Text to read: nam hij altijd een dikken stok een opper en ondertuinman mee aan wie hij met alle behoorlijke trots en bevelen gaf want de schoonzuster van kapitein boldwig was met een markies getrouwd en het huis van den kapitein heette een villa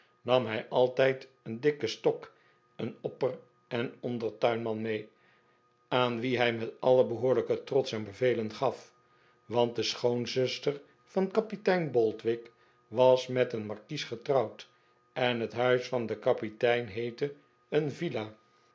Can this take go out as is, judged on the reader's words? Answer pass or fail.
pass